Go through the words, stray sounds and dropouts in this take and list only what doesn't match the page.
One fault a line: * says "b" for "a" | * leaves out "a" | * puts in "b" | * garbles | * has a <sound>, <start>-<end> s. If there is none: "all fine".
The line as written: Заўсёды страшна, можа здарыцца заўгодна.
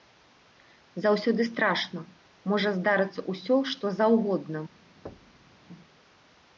* puts in "ўсё што"
* has a thud, 5.1-5.6 s